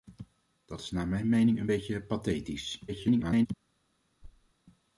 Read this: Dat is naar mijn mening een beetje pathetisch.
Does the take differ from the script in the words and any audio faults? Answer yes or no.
yes